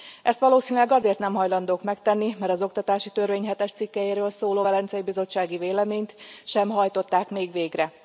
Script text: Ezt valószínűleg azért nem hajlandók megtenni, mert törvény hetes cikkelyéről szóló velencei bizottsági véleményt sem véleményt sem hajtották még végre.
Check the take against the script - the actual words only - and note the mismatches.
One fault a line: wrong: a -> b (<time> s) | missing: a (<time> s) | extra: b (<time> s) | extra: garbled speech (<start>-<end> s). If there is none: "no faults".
extra: az oktatási (2.5 s)
missing: véleményt sem (6.7 s)